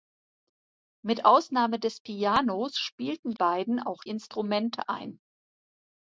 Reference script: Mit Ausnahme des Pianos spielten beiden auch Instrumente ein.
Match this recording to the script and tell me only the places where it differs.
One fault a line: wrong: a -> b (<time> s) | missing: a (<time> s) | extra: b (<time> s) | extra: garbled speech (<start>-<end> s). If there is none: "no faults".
no faults